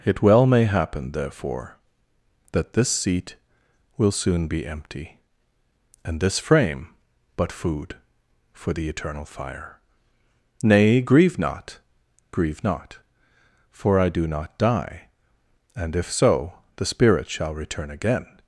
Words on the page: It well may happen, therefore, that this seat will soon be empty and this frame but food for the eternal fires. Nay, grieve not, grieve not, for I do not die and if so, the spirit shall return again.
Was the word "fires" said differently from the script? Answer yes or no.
yes